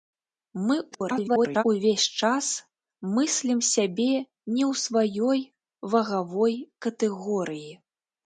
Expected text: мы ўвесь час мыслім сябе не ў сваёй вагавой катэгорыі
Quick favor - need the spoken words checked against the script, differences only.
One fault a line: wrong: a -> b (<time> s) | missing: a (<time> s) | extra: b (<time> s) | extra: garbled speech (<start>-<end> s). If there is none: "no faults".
extra: garbled speech (0.9-1.6 s)